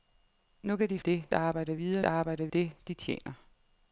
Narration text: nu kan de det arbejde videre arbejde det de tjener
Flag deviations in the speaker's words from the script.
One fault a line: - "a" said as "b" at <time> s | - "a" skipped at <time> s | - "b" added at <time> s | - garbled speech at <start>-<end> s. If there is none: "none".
none